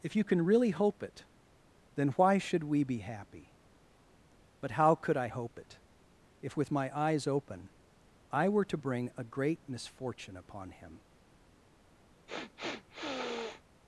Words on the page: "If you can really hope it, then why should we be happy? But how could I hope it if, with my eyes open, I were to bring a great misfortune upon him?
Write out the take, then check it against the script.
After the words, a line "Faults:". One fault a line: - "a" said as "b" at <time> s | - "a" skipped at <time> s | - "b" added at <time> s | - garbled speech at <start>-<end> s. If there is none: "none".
"If you can really hope it, then why should we be happy? But how could I hope it if, with my eyes open, I were to bring a great misfortune upon him?
Faults:
none